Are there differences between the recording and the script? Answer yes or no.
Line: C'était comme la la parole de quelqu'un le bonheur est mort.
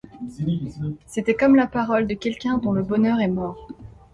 yes